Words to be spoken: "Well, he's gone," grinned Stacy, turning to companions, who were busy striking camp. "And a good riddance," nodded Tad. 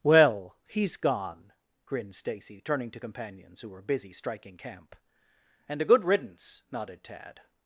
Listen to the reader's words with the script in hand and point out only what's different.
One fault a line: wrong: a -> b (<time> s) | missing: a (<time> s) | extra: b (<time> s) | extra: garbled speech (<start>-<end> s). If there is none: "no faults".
no faults